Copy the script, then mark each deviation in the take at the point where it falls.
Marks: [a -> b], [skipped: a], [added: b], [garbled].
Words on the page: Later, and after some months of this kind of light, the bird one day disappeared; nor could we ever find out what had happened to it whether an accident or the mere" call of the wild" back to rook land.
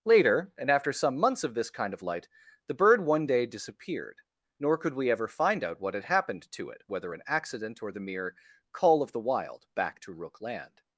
Later, and after some months of this kind of light, the bird one day disappeared; nor could we ever find out what had happened to it whether an accident or the mere" call of the wild" back to rook land.